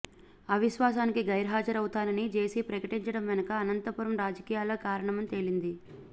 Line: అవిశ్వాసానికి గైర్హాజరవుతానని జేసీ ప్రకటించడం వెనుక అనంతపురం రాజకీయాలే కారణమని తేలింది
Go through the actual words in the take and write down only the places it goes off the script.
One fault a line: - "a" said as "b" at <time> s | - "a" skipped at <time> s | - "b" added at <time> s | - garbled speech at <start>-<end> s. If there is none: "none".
none